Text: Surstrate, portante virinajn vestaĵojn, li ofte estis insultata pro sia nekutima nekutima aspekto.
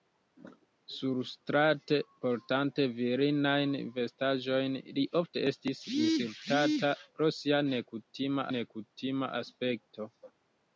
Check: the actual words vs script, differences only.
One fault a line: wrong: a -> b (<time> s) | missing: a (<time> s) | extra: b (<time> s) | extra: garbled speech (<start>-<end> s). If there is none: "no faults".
no faults